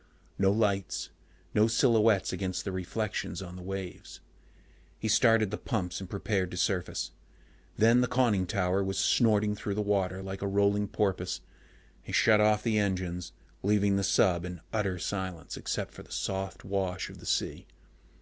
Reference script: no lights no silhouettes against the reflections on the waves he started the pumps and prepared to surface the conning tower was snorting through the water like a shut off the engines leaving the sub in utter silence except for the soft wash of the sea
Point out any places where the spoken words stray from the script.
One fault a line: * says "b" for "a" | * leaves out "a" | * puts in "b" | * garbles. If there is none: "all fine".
* puts in "then"
* puts in "rolling porpoise he"